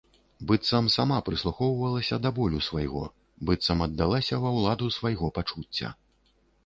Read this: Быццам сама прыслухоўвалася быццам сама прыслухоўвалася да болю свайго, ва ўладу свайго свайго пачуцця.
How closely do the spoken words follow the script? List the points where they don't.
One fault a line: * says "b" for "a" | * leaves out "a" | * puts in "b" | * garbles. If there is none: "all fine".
* leaves out "быццам сама прыслухоўвалася"
* puts in "быццам аддалася"
* leaves out "свайго"